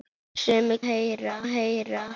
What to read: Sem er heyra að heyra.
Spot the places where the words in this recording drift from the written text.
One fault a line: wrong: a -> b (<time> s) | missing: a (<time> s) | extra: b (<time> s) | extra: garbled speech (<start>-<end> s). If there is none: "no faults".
no faults